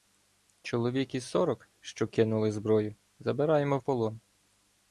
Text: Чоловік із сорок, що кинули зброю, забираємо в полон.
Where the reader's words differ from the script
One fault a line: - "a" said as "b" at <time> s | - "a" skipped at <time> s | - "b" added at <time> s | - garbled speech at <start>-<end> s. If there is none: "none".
none